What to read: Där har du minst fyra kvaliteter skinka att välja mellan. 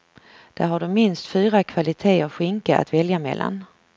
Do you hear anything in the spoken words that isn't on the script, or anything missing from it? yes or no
no